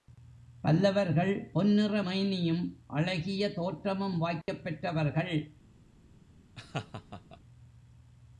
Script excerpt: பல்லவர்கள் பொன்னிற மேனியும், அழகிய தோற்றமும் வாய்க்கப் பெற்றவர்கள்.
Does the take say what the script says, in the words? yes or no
yes